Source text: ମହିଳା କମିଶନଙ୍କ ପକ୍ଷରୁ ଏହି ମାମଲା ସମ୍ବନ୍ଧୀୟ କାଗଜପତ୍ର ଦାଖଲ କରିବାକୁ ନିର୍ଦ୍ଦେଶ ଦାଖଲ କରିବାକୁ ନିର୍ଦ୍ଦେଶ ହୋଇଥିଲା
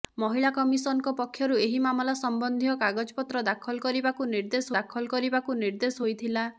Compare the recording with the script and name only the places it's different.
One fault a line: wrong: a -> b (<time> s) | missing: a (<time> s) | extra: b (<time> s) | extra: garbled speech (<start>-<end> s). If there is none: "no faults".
no faults